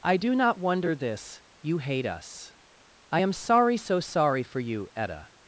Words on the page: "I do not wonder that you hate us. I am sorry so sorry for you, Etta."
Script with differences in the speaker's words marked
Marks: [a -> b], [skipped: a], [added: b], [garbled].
"I do not wonder [that -> this] you hate us. I am sorry so sorry for you, Etta."